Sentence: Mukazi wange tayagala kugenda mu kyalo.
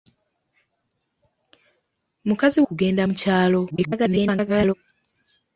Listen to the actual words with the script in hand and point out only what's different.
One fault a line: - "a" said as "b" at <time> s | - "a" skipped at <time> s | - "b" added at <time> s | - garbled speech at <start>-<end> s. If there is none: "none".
- "wange tayagala" skipped at 2.6 s
- garbled speech at 3.7-4.7 s